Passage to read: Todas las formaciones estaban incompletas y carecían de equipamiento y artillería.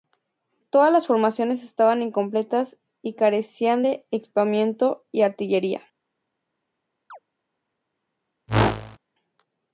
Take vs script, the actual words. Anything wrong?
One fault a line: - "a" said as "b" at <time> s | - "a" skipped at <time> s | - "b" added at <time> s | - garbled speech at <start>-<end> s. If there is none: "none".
none